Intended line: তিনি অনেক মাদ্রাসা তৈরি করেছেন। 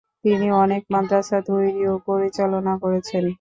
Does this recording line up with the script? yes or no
no